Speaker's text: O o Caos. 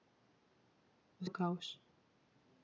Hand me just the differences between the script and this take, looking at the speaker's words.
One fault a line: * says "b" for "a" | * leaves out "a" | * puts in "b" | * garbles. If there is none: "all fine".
all fine